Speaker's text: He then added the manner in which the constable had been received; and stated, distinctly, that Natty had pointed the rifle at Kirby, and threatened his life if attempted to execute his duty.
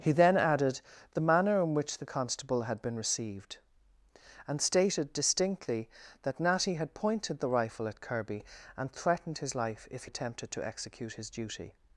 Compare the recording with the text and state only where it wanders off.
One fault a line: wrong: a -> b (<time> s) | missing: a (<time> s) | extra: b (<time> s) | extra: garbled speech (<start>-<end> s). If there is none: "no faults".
no faults